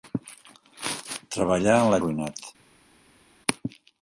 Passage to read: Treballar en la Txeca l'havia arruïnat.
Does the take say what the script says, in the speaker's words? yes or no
no